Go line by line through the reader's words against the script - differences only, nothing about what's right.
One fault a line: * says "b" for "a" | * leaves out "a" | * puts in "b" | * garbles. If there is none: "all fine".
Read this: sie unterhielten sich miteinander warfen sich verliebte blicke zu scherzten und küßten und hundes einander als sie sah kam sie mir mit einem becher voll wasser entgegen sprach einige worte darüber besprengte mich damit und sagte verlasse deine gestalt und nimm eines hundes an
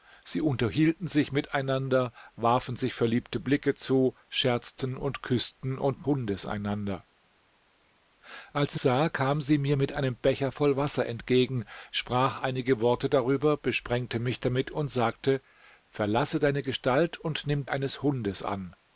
all fine